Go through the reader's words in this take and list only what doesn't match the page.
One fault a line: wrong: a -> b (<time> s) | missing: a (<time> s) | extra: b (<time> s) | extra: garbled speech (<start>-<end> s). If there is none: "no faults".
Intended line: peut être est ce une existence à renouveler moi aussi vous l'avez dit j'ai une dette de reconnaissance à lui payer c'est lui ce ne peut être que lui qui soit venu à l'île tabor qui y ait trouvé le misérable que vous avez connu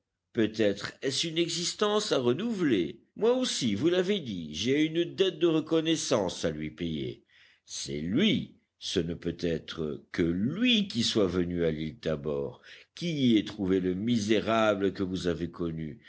no faults